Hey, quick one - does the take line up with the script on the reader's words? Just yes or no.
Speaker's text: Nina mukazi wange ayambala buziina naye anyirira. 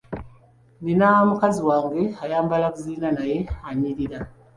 yes